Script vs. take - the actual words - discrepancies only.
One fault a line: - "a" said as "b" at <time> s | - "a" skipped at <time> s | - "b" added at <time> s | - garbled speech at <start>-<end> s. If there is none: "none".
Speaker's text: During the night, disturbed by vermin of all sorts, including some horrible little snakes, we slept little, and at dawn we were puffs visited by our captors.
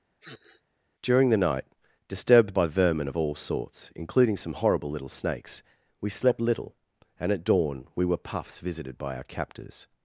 none